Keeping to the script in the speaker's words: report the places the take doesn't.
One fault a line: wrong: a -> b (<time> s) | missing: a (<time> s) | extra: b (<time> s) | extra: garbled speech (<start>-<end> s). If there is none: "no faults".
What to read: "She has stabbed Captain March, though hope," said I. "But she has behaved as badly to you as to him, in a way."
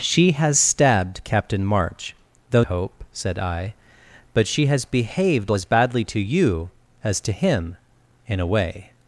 no faults